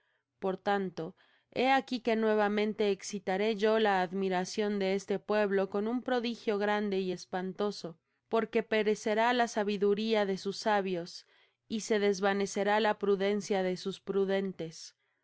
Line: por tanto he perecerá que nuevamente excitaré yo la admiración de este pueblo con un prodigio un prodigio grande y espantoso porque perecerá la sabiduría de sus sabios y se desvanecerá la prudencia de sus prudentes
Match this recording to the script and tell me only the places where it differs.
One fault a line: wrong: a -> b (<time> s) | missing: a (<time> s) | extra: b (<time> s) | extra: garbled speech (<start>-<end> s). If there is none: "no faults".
wrong: perecerá -> aquí (1.7 s)
missing: un prodigio (6.6 s)